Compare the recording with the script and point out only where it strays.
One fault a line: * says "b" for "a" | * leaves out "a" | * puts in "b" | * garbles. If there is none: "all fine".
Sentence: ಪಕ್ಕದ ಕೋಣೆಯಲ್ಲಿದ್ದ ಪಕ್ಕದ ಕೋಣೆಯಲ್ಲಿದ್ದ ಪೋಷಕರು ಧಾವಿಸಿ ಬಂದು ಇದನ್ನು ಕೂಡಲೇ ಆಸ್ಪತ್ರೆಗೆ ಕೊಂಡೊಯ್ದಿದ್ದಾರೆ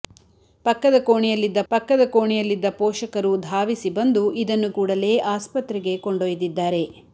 all fine